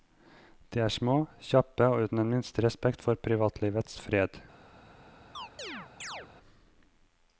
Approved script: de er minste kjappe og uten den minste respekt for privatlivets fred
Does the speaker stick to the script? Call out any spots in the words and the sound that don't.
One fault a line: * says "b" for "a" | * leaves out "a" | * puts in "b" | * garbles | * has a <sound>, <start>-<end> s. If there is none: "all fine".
* says "små" for "minste"
* has a chirp, 5.3-6.3 s